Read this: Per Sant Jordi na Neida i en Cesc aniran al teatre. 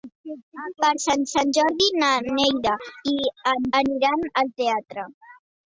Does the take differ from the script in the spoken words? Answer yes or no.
yes